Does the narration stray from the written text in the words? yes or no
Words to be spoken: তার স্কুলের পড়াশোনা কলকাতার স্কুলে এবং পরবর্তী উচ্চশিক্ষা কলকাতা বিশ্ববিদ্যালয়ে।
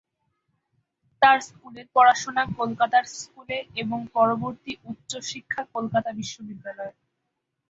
no